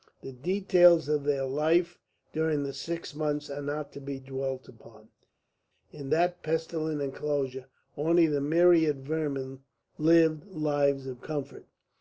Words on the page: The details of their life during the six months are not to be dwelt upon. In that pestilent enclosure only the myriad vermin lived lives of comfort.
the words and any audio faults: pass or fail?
pass